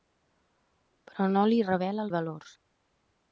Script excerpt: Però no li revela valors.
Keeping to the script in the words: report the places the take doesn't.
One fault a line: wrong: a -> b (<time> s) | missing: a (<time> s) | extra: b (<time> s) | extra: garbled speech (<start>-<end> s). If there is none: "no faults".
no faults